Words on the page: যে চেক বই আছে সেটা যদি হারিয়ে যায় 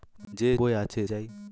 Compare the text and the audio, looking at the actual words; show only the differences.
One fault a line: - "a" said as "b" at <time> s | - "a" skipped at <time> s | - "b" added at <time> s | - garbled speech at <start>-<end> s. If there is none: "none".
- "চেক" skipped at 0.5 s
- "সেটা যদি হারিয়ে" skipped at 1.0 s